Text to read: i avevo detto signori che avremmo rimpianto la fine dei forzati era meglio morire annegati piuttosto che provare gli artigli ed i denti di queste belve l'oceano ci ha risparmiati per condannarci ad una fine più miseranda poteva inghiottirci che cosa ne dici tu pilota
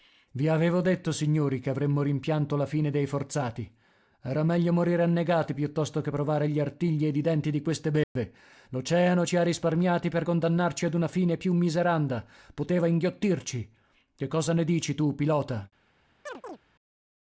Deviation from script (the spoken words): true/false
false